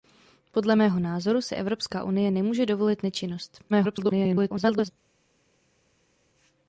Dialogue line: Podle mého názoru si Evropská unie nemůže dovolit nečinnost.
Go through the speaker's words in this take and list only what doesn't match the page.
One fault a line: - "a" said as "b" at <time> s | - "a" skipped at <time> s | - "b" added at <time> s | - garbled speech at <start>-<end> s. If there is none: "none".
- garbled speech at 3.7-4.9 s